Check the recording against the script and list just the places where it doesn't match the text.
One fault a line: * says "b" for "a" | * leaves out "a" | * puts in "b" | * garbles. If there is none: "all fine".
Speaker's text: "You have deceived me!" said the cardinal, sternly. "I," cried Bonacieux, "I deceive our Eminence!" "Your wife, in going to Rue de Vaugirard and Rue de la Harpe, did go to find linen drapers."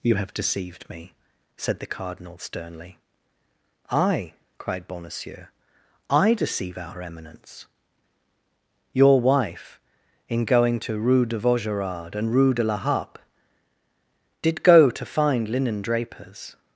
all fine